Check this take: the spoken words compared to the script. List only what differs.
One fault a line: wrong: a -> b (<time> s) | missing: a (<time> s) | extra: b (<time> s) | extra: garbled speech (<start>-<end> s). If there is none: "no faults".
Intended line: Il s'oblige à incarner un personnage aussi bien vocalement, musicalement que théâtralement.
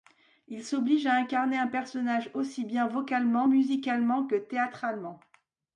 no faults